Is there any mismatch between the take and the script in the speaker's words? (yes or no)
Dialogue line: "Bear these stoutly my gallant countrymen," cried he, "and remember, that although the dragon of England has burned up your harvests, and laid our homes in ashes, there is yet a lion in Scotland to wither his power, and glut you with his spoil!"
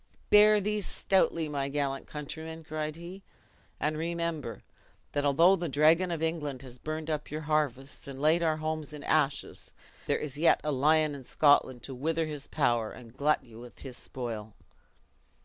no